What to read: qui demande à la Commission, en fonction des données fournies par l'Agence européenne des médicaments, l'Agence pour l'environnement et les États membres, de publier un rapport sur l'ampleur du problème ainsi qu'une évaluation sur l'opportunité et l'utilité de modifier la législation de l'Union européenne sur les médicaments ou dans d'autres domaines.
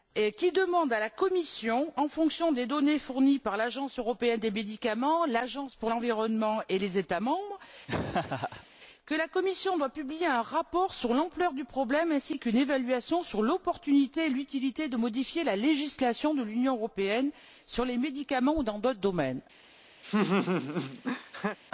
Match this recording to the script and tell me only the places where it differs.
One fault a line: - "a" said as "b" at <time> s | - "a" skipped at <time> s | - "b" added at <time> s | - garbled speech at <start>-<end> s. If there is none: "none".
none